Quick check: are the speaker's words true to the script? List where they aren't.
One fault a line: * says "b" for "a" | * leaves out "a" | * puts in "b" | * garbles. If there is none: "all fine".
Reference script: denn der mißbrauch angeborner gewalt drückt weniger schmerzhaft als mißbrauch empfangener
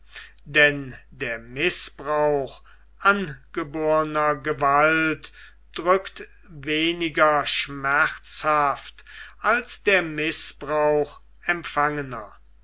* puts in "der"